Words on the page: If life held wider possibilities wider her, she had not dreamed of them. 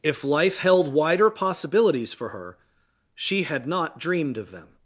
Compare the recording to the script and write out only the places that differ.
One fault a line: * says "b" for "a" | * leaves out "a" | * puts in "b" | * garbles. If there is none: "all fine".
* says "for" for "wider"